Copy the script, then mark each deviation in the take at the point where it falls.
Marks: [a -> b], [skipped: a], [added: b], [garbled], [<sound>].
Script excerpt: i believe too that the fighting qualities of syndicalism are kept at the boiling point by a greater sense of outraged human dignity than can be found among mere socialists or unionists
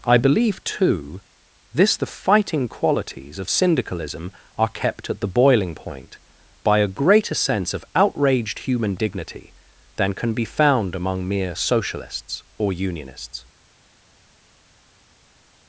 i believe too [that -> this] the fighting qualities of syndicalism are kept at the boiling point by a greater sense of outraged human dignity than can be found among mere socialists or unionists